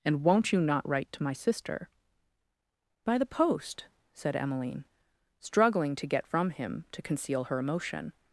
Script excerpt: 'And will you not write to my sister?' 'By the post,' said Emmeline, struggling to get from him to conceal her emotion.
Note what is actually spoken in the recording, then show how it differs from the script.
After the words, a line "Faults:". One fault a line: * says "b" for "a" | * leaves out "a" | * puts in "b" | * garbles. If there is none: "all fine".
'And won't you not write to my sister?' 'By the post,' said Emmeline, struggling to get from him to conceal her emotion.
Faults:
* says "won't" for "will"